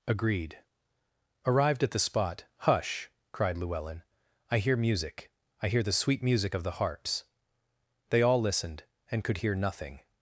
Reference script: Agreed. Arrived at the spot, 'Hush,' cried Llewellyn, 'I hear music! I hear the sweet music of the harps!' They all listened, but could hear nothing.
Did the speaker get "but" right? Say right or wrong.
wrong